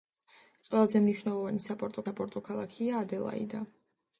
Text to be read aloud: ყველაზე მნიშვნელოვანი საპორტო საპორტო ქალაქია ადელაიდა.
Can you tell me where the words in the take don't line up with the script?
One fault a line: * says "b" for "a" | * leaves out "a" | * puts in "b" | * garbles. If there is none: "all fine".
all fine